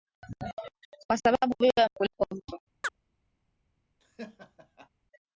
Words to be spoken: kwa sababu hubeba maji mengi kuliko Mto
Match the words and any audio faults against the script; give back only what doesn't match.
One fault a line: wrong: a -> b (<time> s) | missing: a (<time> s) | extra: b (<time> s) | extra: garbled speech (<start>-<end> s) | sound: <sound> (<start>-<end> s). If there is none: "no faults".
missing: maji mengi (1.9 s)
sound: chirp (2.8-3.0 s)
sound: laugh (4.0-4.9 s)